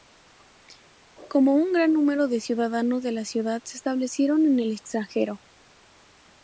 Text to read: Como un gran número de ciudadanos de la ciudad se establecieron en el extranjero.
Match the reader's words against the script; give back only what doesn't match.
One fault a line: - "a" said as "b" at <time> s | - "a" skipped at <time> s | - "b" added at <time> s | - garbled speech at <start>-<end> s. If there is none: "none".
none